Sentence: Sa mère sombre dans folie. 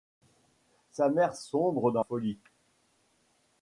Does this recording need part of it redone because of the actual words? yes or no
no